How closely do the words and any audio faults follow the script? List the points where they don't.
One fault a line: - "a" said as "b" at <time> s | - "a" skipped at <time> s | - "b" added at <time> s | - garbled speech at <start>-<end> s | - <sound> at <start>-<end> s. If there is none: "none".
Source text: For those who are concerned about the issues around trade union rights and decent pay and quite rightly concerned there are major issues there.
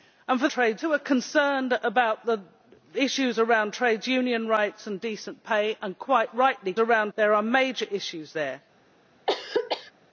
- "those" said as "trade" at 0.5 s
- "concerned" said as "around" at 6.8 s
- throat clearing at 9.3-9.9 s